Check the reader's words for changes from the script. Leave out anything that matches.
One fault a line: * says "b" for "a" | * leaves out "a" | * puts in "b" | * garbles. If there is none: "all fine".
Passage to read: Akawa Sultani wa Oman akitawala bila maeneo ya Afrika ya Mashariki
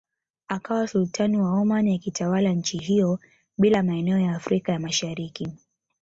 * puts in "nchi hiyo"